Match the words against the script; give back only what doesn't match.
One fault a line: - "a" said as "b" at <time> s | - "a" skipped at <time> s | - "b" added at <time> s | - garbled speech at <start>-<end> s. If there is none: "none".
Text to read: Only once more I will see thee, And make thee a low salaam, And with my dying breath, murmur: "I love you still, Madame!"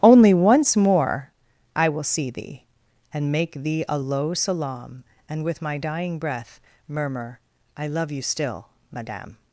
none